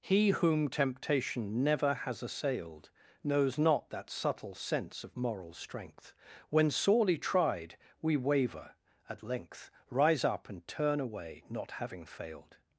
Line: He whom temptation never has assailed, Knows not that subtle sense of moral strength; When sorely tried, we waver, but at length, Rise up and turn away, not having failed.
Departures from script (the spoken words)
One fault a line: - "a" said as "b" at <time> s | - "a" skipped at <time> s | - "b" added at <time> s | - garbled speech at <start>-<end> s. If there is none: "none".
- "but" skipped at 8.8 s